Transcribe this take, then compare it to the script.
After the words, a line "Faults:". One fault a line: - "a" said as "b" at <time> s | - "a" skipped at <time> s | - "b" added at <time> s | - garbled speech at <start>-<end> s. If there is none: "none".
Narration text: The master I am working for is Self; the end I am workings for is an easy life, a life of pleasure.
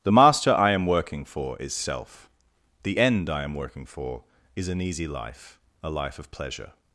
The master I am working for is Self; the end I am working for is an easy life, a life of pleasure.
Faults:
- "workings" said as "working" at 3.5 s